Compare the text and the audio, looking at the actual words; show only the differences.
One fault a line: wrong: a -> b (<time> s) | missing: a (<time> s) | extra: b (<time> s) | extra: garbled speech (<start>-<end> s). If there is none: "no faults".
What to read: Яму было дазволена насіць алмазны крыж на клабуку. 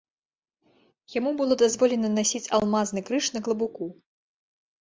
no faults